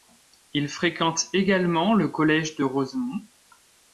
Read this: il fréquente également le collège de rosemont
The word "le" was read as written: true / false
true